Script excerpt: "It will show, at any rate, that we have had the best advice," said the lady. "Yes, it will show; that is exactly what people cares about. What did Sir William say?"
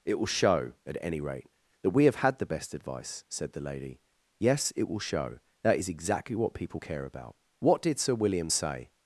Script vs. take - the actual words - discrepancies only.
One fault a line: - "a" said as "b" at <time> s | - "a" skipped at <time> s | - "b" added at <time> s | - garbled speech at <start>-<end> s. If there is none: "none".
- "cares" said as "care" at 6.8 s